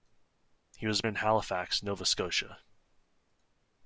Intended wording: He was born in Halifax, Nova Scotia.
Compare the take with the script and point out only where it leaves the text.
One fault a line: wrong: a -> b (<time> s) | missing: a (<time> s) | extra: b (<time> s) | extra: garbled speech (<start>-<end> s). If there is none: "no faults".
missing: born (1.0 s)